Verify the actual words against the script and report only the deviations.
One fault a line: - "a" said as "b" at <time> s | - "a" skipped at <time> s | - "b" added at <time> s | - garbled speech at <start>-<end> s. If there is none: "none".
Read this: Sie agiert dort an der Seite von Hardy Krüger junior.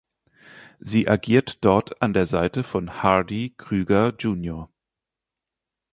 none